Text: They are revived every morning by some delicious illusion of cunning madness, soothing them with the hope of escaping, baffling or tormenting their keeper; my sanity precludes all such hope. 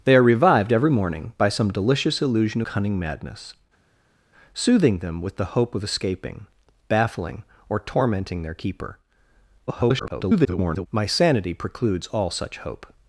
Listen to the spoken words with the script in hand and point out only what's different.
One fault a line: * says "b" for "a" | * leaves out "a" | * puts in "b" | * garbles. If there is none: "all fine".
* leaves out "of"
* garbles